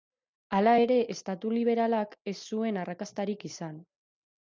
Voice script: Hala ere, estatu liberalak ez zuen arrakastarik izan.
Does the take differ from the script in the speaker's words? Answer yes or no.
no